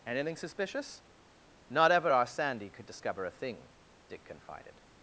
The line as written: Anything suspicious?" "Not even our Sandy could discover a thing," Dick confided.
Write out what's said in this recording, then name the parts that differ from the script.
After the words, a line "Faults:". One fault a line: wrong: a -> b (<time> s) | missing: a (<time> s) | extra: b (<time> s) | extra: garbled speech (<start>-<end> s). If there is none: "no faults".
Anything suspicious?" "Not ever our Sandy could discover a thing," Dick confided.
Faults:
wrong: even -> ever (1.9 s)